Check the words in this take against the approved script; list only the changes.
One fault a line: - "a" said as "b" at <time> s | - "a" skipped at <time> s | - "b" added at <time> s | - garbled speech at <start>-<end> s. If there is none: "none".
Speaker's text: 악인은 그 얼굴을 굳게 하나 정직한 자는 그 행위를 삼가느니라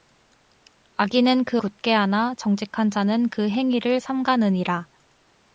- "얼굴을" skipped at 1.6 s